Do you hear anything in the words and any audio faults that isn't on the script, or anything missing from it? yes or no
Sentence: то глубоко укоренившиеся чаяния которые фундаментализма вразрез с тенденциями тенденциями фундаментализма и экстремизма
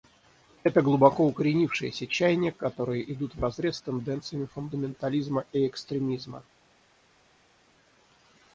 yes